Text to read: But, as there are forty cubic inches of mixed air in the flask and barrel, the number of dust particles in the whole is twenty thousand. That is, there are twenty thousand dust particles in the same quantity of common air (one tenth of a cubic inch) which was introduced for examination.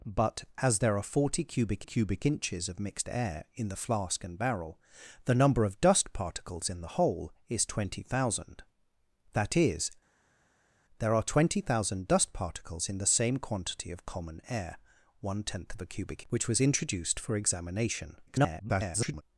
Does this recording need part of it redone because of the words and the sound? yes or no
yes